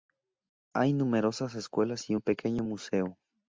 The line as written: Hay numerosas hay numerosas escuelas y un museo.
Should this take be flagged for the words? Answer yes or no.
yes